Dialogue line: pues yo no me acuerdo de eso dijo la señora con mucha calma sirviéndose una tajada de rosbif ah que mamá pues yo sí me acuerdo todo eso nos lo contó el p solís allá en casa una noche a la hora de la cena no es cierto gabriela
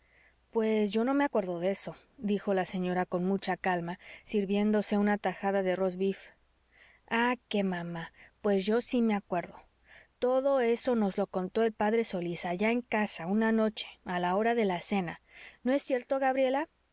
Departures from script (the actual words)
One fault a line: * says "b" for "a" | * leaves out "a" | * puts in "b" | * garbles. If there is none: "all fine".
all fine